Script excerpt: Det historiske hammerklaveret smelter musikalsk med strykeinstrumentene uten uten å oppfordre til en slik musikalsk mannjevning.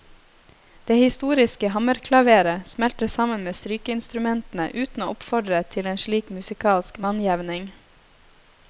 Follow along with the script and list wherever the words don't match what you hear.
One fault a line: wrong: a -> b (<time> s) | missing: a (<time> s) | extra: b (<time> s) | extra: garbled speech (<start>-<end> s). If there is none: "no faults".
wrong: musikalsk -> sammen (3.1 s)
missing: uten (5.0 s)